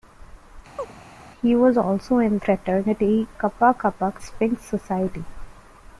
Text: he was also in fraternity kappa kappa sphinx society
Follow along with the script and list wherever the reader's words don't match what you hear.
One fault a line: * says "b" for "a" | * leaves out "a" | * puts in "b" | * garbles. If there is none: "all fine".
all fine